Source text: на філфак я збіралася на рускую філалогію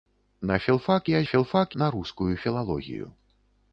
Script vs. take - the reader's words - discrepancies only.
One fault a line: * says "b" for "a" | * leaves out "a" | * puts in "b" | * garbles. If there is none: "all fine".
* says "філфак" for "збіралася"